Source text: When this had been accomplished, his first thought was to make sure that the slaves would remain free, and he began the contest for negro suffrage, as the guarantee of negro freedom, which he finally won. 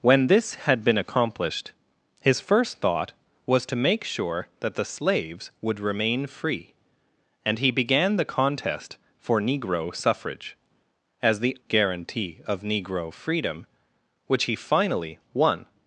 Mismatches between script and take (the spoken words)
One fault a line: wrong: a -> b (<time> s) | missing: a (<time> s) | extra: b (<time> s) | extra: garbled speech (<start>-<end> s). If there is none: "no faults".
no faults